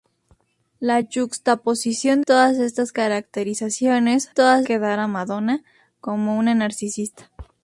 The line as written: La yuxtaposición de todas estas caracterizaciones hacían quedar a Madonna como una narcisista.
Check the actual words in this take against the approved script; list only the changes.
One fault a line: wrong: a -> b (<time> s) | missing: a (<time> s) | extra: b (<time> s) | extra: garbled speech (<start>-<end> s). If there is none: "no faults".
missing: de (2.2 s)
wrong: hacían -> todas (4.3 s)